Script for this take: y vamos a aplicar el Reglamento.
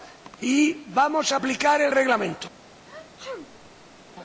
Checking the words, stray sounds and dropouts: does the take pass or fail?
fail